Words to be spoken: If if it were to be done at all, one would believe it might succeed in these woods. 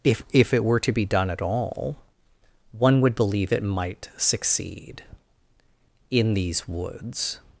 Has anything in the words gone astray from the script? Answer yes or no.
no